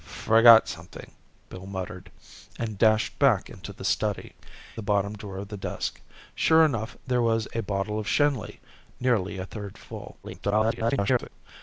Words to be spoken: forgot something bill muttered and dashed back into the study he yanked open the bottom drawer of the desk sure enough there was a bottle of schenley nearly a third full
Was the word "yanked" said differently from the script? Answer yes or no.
yes